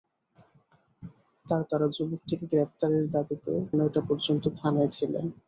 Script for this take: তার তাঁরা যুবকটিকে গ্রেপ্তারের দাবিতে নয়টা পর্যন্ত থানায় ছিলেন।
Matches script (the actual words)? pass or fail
pass